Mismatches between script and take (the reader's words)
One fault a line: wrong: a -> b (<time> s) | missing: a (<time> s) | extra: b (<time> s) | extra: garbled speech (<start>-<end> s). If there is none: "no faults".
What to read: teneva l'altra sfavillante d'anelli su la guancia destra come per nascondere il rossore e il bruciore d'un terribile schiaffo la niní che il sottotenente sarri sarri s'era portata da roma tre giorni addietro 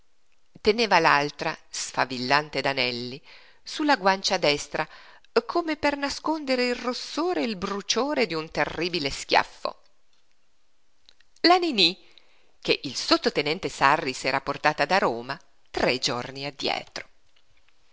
missing: sarri (14.1 s)